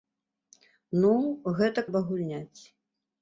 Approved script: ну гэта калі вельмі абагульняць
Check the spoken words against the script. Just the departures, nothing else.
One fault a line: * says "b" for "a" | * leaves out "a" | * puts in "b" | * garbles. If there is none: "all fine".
* leaves out "калі вельмі"